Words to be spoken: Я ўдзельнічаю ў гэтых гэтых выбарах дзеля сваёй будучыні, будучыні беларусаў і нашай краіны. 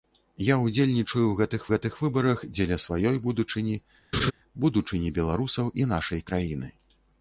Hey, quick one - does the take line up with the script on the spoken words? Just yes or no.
yes